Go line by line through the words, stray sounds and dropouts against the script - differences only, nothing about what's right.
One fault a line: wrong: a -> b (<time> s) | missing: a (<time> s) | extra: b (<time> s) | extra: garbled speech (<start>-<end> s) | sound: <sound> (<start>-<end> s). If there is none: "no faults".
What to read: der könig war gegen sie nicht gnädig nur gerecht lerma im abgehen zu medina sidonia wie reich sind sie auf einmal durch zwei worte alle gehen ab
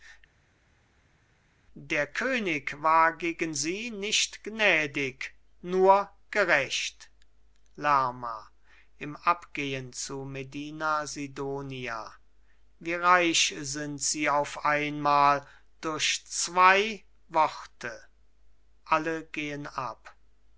no faults